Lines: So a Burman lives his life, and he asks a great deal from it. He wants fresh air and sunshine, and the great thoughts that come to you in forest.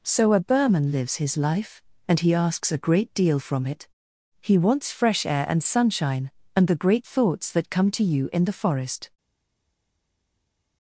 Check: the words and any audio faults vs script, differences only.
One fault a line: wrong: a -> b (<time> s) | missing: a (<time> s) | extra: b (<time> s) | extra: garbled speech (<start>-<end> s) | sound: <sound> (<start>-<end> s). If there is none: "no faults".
extra: the (8.4 s)